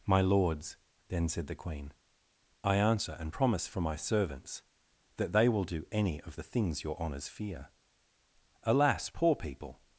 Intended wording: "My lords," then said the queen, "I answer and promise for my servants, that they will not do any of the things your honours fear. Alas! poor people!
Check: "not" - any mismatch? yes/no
yes